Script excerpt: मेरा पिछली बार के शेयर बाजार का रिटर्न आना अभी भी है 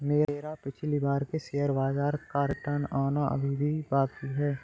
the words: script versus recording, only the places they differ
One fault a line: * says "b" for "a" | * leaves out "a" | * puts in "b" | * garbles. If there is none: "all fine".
* puts in "बाकी"